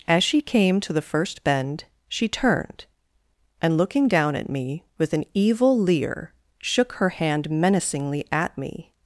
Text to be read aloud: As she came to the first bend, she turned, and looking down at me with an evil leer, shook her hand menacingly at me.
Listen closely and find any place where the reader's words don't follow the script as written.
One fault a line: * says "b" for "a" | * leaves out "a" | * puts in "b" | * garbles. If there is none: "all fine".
all fine